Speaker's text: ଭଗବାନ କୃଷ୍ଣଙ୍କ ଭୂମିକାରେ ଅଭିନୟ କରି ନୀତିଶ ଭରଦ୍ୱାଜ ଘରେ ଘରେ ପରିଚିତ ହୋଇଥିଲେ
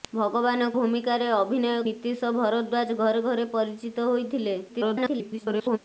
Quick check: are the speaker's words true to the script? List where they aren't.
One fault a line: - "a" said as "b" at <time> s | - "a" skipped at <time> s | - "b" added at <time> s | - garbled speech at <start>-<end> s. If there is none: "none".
- "କୃଷ୍ଣଙ୍କ" skipped at 0.7 s
- "କରି" skipped at 1.7 s
- garbled speech at 4.7-5.8 s